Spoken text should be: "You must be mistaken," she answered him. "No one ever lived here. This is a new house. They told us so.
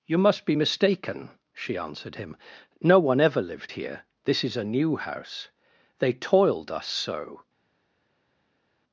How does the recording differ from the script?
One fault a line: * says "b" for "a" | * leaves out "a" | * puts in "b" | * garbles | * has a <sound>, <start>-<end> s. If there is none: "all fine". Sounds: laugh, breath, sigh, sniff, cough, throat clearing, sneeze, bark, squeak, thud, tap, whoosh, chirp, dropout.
* says "toiled" for "told"